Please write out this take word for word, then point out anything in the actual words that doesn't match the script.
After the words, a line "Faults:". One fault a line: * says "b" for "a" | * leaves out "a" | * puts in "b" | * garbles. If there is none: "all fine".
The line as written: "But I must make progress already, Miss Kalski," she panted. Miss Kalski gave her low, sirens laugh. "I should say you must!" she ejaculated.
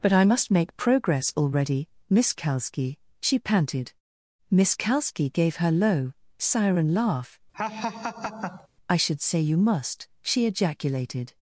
"But I must make progress already, Miss Kalski," she panted. Miss Kalski gave her low, siren laugh. "I should say you must!" she ejaculated.
Faults:
* says "siren" for "sirens"